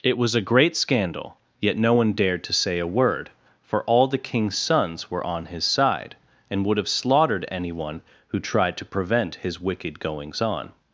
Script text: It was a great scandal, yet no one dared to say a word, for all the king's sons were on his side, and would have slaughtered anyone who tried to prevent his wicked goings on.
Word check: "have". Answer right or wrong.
right